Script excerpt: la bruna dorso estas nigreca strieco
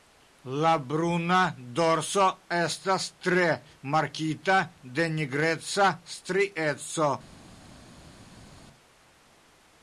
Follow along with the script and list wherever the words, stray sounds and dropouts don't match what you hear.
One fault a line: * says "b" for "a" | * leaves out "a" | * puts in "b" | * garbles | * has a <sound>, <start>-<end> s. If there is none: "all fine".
* puts in "tre markita de"